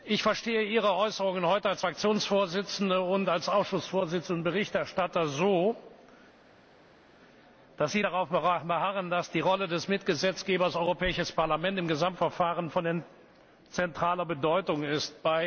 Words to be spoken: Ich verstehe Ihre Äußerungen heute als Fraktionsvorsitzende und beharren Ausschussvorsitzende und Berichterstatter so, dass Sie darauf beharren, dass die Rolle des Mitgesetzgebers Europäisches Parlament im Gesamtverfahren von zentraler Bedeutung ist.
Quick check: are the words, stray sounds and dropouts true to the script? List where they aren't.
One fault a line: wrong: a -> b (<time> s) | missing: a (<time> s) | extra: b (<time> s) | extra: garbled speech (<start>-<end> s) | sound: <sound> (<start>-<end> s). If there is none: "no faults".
wrong: beharren -> als (3.3 s)